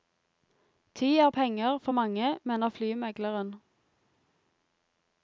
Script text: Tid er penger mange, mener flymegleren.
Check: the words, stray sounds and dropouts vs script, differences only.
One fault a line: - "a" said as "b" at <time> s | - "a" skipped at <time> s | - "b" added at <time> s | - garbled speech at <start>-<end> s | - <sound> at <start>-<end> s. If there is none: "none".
- "for" added at 1.8 s